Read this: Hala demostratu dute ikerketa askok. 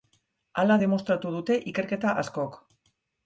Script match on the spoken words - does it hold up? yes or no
yes